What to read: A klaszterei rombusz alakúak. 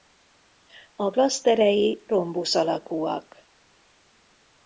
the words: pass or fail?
pass